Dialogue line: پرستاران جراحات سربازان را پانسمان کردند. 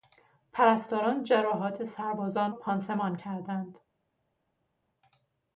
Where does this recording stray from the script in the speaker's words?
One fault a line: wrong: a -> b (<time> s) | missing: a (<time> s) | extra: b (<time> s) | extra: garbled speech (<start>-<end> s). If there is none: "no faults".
missing: را (2.5 s)